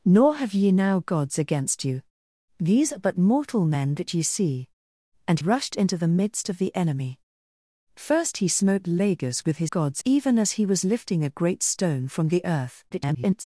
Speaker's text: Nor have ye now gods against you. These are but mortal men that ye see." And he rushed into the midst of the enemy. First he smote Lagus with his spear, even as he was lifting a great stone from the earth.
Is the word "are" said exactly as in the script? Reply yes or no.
yes